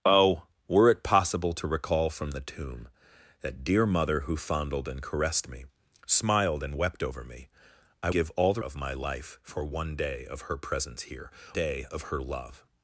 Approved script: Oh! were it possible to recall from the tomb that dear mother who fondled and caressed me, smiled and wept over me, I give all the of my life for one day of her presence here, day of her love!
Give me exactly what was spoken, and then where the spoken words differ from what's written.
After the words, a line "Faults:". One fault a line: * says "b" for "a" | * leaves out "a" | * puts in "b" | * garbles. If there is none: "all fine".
Oh! were it possible to recall from the tomb that dear mother who fondled and caressed me, smiled and wept over me, I give all the of my life for one day of her presence here, day of her love!
Faults:
all fine